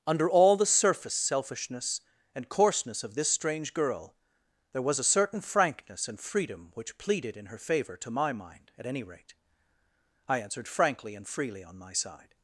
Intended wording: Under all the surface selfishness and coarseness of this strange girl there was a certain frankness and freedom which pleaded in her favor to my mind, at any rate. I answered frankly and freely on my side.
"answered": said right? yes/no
yes